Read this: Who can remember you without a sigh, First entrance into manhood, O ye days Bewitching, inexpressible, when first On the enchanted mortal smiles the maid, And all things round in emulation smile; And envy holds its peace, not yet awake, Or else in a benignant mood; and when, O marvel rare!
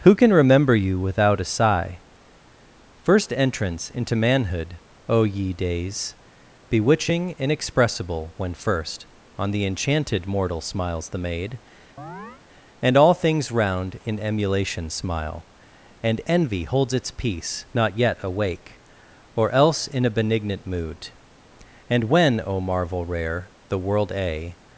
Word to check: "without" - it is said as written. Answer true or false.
true